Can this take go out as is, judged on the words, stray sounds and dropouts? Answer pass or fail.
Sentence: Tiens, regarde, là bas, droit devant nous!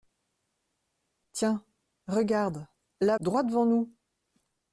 fail